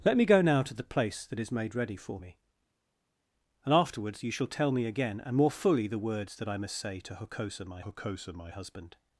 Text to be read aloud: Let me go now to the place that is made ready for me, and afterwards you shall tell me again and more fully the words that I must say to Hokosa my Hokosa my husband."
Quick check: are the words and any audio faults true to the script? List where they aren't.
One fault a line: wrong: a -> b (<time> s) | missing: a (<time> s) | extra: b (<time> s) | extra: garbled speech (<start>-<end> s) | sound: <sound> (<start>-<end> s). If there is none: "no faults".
no faults